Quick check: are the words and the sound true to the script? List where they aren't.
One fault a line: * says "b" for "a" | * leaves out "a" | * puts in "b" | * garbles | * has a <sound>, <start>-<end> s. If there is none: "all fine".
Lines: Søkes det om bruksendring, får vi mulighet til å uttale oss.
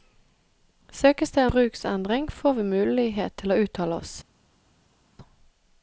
* leaves out "om"